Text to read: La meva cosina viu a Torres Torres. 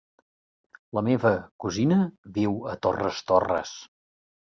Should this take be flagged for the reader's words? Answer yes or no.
no